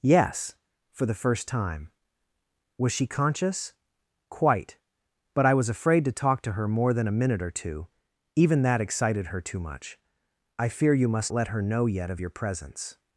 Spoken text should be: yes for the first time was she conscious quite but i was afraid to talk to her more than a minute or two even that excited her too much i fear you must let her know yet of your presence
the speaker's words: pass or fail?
pass